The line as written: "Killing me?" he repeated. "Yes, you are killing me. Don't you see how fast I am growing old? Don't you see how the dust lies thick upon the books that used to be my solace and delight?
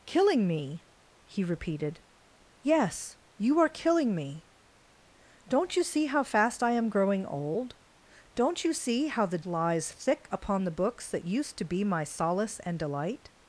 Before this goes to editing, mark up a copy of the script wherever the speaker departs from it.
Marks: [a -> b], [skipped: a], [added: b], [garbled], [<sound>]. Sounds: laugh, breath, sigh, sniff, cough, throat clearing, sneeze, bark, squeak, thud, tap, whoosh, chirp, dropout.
"Killing me?" he repeated. "Yes, you are killing me. Don't you see how fast I am growing old? Don't you see how the [skipped: dust] lies thick upon the books that used to be my solace and delight?